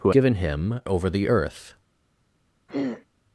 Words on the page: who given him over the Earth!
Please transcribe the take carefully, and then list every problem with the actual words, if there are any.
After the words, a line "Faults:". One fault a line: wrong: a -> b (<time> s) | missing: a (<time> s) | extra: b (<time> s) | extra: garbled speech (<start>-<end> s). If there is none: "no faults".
who given him over the Earth!
Faults:
no faults